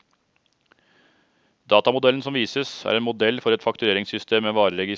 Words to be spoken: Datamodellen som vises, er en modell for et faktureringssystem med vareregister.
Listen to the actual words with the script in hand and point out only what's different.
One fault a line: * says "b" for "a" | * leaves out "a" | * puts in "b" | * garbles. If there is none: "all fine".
all fine